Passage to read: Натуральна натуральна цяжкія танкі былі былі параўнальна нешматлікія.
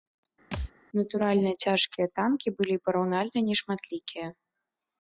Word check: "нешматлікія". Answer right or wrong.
right